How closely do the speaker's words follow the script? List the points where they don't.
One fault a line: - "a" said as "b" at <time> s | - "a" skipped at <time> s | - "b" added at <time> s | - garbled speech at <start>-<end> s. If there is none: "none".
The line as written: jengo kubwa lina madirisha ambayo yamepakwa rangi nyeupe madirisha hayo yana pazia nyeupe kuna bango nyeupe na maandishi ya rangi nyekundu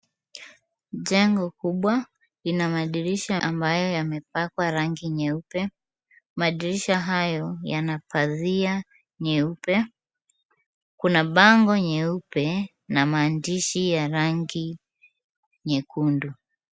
none